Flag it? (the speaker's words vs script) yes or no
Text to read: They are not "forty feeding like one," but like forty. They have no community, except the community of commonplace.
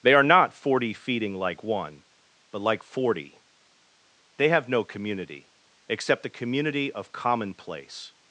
no